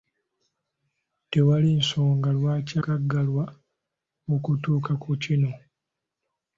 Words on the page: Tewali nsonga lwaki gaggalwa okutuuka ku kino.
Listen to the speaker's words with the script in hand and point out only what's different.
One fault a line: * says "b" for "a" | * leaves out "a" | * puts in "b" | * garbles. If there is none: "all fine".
all fine